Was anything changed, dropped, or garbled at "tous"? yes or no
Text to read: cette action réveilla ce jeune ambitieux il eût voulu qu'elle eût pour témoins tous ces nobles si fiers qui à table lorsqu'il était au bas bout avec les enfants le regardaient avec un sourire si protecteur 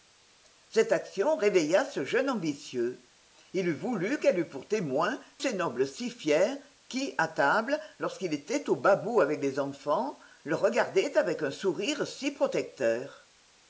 yes